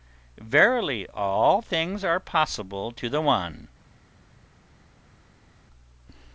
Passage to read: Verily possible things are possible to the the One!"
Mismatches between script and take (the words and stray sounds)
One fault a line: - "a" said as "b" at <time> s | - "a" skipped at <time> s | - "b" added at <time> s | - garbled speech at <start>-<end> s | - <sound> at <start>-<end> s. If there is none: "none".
- "possible" said as "all" at 1.1 s
- "the" skipped at 3.2 s